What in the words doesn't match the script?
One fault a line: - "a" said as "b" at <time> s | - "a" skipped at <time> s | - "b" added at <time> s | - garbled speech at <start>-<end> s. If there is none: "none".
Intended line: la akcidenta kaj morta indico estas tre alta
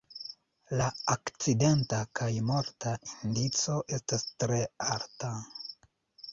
none